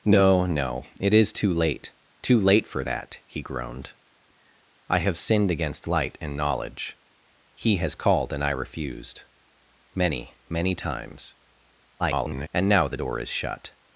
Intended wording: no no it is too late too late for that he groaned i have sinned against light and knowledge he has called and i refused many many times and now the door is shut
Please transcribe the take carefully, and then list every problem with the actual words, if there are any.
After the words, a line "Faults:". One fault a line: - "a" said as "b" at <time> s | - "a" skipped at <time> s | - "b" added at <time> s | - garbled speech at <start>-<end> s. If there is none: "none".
no no it is too late too late for that he groaned i have sinned against light and knowledge he has called and i refused many many times [garbled] and now the door is shut
Faults:
- garbled speech at 12.0-12.5 s